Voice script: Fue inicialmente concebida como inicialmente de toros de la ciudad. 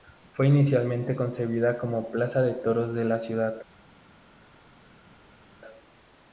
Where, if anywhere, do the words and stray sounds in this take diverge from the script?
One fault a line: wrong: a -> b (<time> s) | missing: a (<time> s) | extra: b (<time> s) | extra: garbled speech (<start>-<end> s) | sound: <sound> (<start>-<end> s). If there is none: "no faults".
wrong: inicialmente -> plaza (2.1 s)